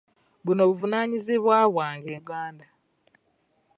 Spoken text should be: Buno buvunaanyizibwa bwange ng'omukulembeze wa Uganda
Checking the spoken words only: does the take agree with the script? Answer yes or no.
no